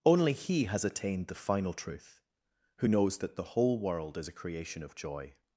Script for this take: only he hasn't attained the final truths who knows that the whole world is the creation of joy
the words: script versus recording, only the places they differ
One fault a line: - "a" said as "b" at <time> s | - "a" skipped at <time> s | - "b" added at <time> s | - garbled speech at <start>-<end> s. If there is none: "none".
- "hasn't" said as "has" at 0.6 s
- "truths" said as "truth" at 1.7 s
- "the" said as "a" at 4.3 s